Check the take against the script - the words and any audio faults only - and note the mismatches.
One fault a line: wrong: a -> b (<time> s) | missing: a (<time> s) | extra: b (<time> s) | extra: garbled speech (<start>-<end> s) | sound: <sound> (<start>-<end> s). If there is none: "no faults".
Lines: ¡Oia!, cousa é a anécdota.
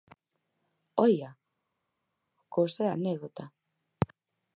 no faults